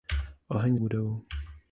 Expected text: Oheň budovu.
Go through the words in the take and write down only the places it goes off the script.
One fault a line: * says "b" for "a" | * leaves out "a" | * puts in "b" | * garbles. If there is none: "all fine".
all fine